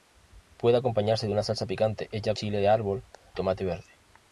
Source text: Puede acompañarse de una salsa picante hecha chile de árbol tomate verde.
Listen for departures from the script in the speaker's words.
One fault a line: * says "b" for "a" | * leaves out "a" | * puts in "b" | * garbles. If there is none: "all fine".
all fine